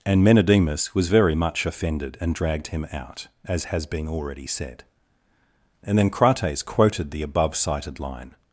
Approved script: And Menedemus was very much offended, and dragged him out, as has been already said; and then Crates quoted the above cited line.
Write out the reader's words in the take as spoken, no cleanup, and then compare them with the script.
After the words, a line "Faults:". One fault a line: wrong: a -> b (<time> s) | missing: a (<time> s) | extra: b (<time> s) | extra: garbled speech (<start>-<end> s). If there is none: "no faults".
And Menedemus was very much offended, and dragged him out, as has been already said; and then Crates quoted the above cited line.
Faults:
no faults